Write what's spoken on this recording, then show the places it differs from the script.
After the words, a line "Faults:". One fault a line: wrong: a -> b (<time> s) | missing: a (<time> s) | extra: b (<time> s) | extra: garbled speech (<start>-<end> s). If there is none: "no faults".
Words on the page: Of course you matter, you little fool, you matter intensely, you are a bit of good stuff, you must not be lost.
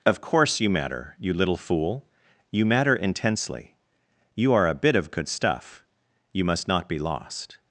Of course you matter, you little fool, you matter intensely, you are a bit of good stuff, you must not be lost.
Faults:
no faults